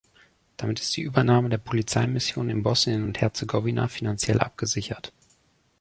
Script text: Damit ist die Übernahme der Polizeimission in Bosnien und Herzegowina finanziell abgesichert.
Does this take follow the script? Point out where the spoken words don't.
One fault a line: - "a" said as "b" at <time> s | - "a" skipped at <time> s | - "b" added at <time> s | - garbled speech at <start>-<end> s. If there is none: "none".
none